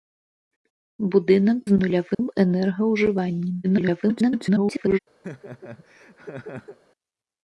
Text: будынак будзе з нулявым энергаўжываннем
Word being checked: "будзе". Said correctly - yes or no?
no